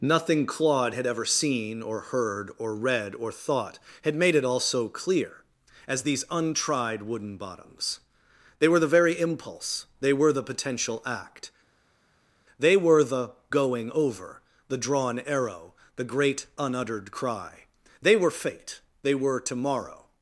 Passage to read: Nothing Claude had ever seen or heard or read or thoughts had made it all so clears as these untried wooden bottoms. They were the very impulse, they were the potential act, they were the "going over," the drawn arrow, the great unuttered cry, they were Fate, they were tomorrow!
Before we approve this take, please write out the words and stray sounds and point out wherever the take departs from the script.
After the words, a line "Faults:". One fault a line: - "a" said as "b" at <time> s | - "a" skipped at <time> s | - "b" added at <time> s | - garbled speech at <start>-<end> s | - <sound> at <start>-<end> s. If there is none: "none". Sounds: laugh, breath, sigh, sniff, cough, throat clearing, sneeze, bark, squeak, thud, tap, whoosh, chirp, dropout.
Nothing Claude had ever seen or heard or read or thought had made it all so clear as these untried wooden bottoms. They were the very impulse, they were the potential act, they were the "going over," the drawn arrow, the great unuttered cry, they were Fate, they were tomorrow!
Faults:
- "thoughts" said as "thought" at 3.3 s
- "clears" said as "clear" at 4.9 s